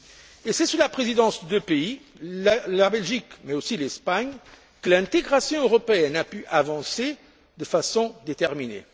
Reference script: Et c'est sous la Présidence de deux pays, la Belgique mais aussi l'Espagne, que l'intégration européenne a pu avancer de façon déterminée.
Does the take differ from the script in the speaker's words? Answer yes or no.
no